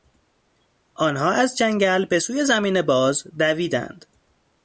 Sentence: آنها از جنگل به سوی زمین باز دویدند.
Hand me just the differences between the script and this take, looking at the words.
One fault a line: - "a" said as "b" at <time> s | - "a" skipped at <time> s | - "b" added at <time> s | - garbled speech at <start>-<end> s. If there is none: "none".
none